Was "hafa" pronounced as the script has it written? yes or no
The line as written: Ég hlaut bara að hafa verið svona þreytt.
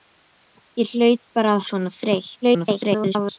no